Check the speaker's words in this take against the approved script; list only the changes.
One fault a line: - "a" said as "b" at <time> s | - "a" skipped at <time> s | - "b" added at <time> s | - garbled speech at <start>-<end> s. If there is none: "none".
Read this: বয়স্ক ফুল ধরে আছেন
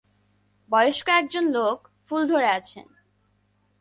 - "একজন লোক" added at 1.1 s